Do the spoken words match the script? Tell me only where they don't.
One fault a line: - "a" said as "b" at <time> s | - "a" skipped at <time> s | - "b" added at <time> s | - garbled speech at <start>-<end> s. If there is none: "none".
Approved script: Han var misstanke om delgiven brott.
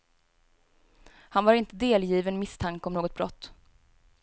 - "inte delgiven" added at 1.5 s
- "delgiven" said as "något" at 2.9 s